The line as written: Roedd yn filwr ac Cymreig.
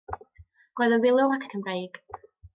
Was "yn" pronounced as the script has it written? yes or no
yes